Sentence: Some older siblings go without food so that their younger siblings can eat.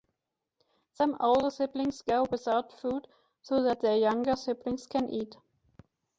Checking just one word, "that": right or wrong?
right